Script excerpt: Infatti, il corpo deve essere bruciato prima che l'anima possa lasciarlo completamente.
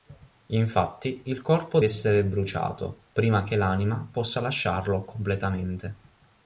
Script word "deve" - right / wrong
wrong